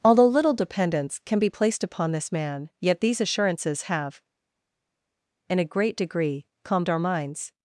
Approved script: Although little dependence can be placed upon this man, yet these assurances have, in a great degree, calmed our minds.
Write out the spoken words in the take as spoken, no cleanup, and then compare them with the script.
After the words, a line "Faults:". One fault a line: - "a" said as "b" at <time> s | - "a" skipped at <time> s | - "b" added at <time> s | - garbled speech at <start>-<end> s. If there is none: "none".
Although little dependence can be placed upon this man, yet these assurances have, in a great degree, calmed our minds.
Faults:
none